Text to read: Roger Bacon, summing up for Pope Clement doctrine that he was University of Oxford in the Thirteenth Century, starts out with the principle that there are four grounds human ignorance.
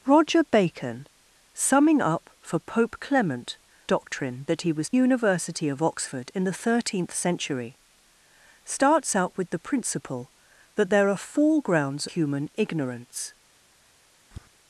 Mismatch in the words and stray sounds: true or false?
true